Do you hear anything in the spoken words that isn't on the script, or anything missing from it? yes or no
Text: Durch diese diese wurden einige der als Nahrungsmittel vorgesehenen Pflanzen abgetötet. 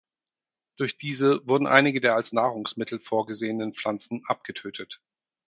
yes